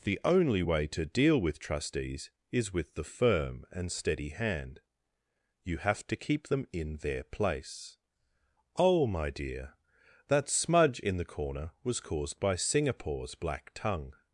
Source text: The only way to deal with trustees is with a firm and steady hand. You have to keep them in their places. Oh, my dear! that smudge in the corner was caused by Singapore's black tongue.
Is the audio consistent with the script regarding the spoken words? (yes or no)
no